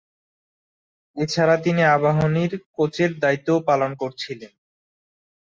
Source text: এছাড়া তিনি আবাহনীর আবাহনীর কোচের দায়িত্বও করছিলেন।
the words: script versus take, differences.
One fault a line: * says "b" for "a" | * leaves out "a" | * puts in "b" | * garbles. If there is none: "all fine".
* leaves out "আবাহনীর"
* puts in "পালন"